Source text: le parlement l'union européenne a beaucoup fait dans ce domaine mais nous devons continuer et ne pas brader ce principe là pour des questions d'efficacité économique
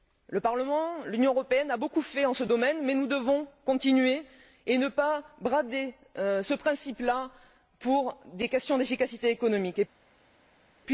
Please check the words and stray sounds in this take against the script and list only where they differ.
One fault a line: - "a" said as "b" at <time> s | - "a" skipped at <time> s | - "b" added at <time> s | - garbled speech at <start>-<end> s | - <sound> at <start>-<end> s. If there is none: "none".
none